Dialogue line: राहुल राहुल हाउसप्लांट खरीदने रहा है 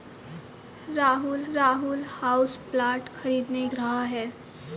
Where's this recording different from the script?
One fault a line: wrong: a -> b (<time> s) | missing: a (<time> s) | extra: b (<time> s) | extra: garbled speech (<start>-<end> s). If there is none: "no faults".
no faults